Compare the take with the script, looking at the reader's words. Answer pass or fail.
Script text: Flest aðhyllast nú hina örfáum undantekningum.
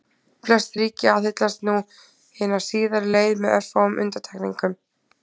fail